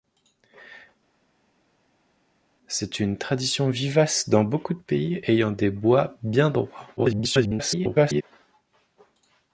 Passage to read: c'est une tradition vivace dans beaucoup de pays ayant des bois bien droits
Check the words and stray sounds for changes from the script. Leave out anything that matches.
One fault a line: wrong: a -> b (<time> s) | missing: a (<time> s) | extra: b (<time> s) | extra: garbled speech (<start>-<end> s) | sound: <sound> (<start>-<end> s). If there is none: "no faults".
extra: garbled speech (7.0-8.2 s)